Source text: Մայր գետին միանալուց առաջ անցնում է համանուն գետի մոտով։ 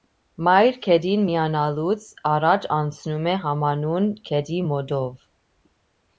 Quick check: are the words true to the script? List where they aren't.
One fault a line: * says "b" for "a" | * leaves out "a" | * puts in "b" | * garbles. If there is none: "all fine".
all fine